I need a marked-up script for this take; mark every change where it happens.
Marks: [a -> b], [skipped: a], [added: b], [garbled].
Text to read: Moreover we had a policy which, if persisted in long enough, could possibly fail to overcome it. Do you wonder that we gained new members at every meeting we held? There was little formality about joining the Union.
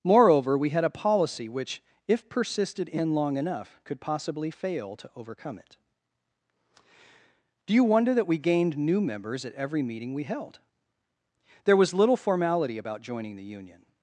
Moreover we had a policy which, if persisted in long enough, could possibly fail to overcome it. Do you wonder that we gained new members at every meeting we held? There was little formality about joining the Union.